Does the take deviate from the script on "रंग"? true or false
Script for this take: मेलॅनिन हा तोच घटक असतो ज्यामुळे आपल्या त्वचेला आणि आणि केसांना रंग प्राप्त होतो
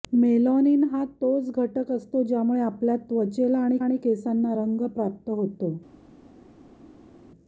false